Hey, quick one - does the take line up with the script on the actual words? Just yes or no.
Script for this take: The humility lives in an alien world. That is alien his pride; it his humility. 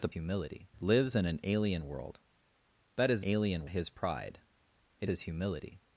yes